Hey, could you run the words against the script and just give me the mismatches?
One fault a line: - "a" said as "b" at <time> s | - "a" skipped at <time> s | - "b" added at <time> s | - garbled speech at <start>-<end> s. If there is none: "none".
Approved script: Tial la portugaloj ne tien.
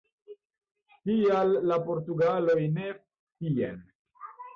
none